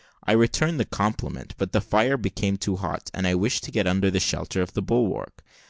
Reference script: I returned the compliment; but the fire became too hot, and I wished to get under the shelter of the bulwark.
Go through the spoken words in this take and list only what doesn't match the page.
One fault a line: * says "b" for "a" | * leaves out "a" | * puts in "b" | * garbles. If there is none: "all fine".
all fine